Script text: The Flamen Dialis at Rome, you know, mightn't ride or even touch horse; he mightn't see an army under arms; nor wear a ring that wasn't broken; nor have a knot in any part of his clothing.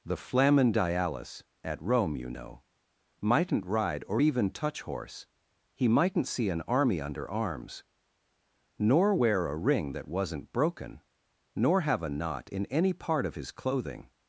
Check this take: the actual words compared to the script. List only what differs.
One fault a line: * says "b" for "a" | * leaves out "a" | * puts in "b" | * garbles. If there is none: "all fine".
all fine